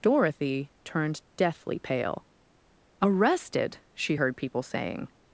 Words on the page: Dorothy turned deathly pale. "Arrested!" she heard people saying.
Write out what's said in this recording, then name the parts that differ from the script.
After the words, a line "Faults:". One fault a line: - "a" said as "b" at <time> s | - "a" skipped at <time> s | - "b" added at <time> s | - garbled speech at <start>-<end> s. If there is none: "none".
Dorothy turned deathly pale. "Arrested!" she heard people saying.
Faults:
none